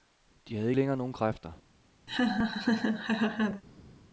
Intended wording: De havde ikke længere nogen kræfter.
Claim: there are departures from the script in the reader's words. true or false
true